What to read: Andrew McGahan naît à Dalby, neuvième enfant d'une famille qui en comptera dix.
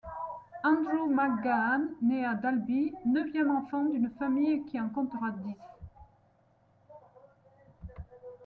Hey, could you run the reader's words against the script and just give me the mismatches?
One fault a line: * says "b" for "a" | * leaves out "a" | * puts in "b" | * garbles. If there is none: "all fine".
all fine